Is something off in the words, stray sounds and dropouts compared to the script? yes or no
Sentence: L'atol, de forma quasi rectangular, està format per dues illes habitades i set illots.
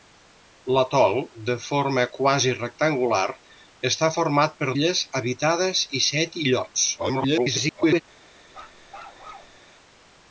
yes